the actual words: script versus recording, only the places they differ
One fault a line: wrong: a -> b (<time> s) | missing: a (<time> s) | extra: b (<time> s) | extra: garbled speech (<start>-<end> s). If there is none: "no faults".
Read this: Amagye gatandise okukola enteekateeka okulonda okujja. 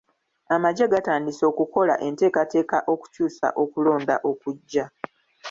extra: okukyusa (2.9 s)